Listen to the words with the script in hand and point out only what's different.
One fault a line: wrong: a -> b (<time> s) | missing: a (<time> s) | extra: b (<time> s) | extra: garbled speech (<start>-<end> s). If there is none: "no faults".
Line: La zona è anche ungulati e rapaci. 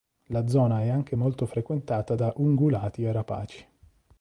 extra: molto frequentata da (1.1 s)